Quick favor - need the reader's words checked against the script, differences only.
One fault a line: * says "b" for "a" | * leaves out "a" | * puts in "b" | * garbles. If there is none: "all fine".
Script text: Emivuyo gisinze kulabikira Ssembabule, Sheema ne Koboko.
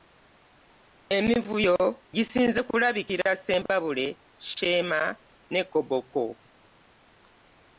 all fine